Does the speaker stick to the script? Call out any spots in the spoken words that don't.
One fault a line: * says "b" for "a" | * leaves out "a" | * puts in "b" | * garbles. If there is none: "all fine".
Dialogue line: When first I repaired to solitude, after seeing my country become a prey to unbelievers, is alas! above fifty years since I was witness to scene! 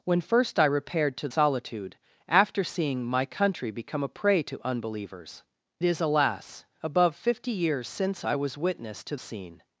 all fine